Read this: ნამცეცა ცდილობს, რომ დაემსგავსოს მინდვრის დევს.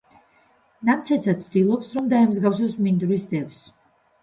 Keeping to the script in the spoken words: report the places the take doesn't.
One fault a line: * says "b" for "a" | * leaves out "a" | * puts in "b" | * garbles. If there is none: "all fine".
all fine